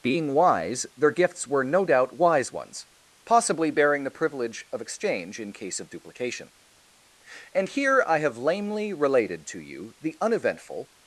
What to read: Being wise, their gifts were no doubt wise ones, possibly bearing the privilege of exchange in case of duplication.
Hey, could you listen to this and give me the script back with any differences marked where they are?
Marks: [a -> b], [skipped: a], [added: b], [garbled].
Being wise, their gifts were no doubt wise ones, possibly bearing the privilege of exchange in case of duplication. [added: And here I have lamely related to you the uneventful]